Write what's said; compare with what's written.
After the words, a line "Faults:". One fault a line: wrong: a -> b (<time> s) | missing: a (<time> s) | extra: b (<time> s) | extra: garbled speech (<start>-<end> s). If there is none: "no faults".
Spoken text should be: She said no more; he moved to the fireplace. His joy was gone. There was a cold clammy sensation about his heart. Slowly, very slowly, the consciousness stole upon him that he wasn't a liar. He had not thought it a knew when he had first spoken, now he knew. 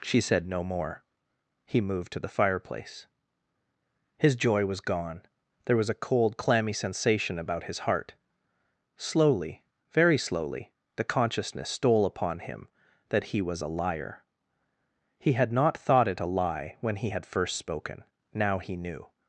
She said no more; he moved to the fireplace. His joy was gone. There was a cold clammy sensation about his heart. Slowly, very slowly, the consciousness stole upon him that he was a liar. He had not thought it a lie when he had first spoken, now he knew.
Faults:
wrong: wasn't -> was (13.4 s)
wrong: knew -> lie (16.2 s)